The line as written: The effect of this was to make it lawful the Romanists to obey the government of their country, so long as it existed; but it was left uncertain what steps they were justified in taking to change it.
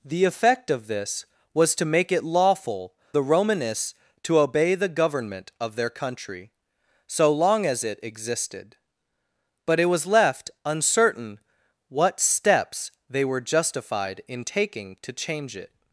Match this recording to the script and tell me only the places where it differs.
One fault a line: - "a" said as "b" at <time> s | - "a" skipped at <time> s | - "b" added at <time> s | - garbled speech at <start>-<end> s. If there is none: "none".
none